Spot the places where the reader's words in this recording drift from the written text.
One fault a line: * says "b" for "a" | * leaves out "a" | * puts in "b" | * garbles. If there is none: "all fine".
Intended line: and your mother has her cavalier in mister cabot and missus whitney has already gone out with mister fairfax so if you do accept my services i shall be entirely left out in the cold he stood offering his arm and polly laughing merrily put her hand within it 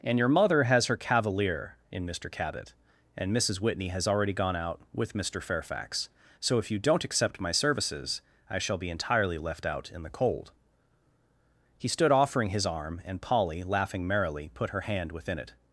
* says "don't" for "do"